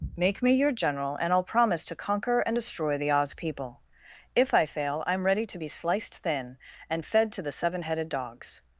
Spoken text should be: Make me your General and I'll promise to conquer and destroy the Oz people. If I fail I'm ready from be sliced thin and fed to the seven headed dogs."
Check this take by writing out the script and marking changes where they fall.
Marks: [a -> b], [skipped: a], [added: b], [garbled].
Make me your General and I'll promise to conquer and destroy the Oz people. If I fail I'm ready [from -> to] be sliced thin and fed to the seven headed dogs."